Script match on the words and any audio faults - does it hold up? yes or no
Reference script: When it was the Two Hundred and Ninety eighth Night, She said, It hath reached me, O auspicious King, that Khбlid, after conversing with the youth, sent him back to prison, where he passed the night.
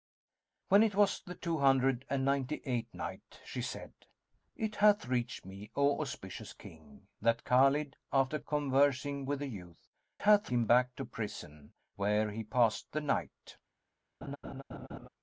no